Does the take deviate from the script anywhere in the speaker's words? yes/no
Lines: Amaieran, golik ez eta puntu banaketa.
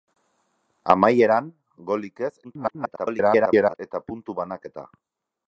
yes